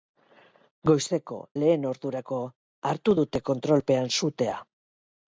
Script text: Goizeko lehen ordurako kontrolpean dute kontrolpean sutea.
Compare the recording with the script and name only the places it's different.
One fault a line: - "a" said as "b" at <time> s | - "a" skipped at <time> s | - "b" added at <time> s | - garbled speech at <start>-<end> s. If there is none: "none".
- "kontrolpean" said as "hartu" at 2.9 s